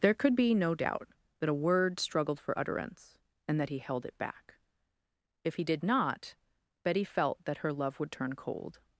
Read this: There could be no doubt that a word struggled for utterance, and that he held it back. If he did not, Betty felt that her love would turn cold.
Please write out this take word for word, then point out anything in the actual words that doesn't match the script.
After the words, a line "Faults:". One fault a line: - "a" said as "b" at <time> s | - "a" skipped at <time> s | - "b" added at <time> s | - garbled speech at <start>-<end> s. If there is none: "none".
There could be no doubt that a word struggled for utterance, and that he held it back. If he did not, Betty felt that her love would turn cold.
Faults:
none